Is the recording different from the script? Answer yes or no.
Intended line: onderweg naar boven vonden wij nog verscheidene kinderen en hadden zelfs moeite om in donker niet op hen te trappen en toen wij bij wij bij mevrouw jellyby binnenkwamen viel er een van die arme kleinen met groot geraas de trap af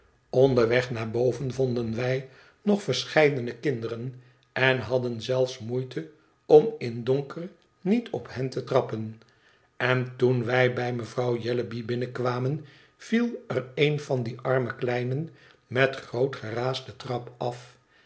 yes